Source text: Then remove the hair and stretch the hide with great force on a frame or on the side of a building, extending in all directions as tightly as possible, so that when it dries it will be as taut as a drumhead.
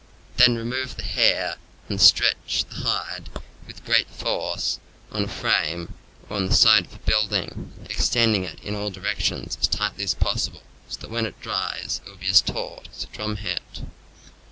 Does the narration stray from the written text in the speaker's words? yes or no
yes